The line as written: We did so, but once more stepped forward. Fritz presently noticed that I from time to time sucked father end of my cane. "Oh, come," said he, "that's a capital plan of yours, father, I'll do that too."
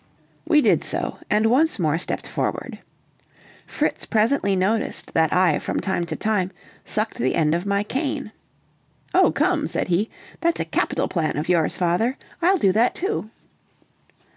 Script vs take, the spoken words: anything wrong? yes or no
yes